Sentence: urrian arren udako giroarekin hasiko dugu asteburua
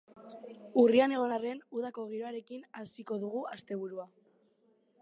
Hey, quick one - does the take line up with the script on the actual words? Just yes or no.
no